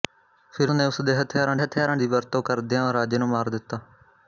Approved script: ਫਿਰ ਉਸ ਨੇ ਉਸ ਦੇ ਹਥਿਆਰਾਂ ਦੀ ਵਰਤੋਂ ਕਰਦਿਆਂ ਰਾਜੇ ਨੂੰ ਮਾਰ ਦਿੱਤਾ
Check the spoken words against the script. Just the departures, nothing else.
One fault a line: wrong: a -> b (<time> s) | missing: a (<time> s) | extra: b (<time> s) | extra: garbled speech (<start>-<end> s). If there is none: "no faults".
missing: ਉਸ (0.7 s)
extra: ਹਥਿਆਰਾਂ (1.6 s)